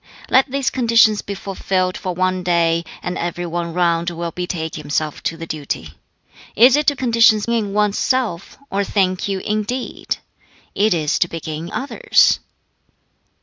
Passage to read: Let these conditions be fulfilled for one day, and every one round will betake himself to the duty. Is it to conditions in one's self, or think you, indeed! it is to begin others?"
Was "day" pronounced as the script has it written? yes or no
yes